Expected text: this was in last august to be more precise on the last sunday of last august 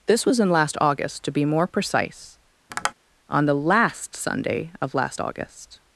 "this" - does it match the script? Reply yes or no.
yes